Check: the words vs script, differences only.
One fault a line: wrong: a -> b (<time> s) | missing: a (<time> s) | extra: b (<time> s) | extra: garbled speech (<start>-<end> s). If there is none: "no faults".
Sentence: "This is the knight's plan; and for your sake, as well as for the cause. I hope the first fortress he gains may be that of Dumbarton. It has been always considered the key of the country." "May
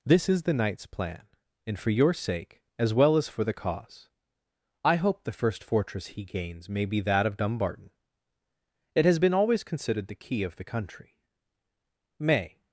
no faults